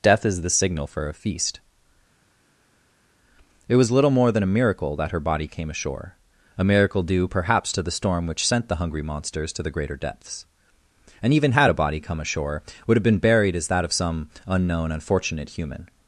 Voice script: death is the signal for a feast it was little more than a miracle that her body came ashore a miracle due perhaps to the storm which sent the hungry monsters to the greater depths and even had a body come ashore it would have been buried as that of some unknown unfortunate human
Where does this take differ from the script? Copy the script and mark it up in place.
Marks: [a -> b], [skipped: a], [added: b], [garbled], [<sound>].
death is the signal for a feast it was little more than a miracle that her body came ashore a miracle due perhaps to the storm which sent the hungry monsters to the greater depths and even had a body come ashore [skipped: it] would have been buried as that of some unknown unfortunate human